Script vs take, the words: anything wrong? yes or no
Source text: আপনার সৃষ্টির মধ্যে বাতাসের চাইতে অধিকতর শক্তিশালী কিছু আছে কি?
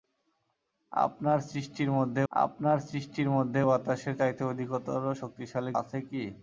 yes